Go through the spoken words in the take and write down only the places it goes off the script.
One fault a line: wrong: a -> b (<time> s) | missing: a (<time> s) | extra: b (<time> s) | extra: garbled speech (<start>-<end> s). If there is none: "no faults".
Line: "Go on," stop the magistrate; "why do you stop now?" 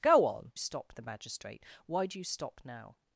no faults